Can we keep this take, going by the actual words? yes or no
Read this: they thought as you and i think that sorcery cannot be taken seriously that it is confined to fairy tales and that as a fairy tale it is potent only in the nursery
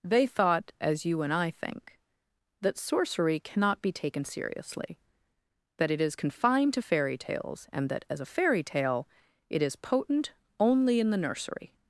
yes